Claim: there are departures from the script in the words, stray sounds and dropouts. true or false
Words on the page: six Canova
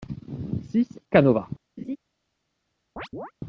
true